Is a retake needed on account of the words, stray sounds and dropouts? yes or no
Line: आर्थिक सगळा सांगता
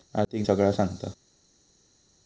no